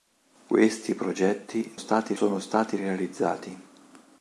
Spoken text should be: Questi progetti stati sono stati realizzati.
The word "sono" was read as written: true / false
true